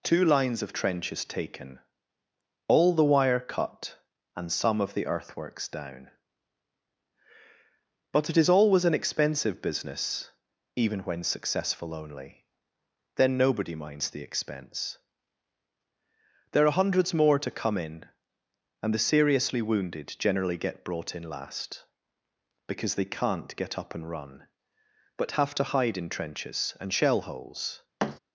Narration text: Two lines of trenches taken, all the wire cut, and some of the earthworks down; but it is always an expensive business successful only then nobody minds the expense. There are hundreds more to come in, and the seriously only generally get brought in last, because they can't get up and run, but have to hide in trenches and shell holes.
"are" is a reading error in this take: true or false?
false